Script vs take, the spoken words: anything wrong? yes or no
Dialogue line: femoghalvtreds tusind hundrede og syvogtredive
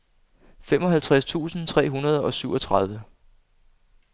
yes